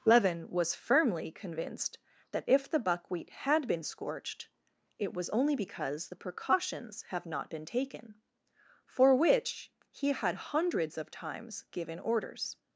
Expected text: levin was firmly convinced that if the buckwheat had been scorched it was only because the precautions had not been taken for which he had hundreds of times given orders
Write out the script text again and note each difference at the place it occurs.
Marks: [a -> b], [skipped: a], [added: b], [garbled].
levin was firmly convinced that if the buckwheat had been scorched it was only because the precautions [had -> have] not been taken for which he had hundreds of times given orders